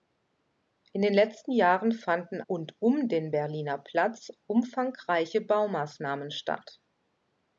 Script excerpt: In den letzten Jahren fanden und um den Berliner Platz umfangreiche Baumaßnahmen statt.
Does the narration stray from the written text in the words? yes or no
no